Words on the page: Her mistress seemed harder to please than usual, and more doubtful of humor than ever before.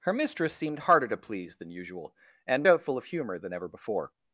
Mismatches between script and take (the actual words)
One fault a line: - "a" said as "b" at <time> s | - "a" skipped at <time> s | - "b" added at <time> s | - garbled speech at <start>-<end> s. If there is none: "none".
- "more" skipped at 2.6 s